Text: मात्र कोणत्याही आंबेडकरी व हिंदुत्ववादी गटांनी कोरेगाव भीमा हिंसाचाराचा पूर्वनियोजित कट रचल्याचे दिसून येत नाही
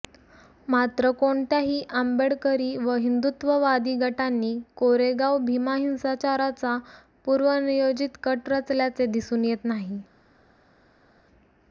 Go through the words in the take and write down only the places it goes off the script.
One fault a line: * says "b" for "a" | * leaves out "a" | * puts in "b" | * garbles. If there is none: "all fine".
all fine